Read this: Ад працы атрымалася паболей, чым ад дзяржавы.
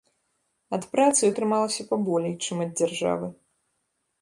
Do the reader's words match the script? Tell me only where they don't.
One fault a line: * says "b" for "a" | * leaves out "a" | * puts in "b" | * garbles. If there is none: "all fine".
all fine